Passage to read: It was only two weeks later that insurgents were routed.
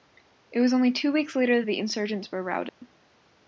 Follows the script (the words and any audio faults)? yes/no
no